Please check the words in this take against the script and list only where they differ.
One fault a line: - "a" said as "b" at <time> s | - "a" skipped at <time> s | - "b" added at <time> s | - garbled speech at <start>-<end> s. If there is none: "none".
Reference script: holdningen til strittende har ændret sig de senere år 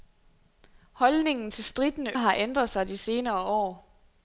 none